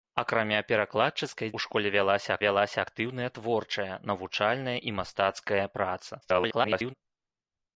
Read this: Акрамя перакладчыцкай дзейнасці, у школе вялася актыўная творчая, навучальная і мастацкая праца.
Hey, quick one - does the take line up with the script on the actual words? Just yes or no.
no